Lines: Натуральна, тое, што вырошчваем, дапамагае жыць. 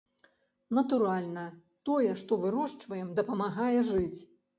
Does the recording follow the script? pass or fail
pass